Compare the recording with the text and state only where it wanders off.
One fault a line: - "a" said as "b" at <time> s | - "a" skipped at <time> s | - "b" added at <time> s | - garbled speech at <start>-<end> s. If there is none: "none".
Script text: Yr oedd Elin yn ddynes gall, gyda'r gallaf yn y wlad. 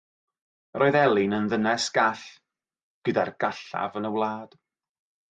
none